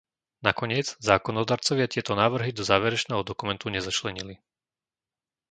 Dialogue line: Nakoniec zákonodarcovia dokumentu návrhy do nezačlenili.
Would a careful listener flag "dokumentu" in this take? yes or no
yes